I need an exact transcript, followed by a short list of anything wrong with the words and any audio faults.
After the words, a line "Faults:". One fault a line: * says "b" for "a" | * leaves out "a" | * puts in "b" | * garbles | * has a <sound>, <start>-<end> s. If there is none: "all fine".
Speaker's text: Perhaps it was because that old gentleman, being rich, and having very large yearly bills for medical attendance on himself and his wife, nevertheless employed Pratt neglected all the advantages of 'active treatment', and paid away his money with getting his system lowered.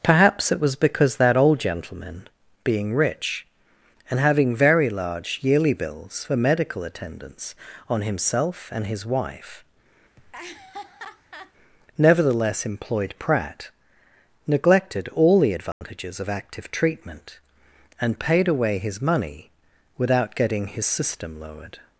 Perhaps it was because that old gentleman, being rich, and having very large yearly bills for medical attendance on himself and his wife, nevertheless employed Pratt neglected all the advantages of 'active treatment', and paid away his money without getting his system lowered.
Faults:
* has a laugh, 10.2-11.5 s
* has a dropout, 15.7-15.8 s
* says "without" for "with"